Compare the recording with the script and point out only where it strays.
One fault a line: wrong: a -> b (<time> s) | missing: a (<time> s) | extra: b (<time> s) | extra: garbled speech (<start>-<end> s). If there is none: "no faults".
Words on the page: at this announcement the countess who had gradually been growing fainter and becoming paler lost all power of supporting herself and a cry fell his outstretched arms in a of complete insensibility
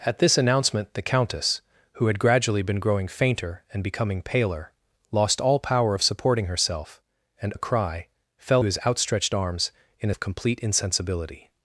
no faults